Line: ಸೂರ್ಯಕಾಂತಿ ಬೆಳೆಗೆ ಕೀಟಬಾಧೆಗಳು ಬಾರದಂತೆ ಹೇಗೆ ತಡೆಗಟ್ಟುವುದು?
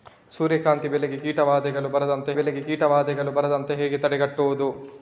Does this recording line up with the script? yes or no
no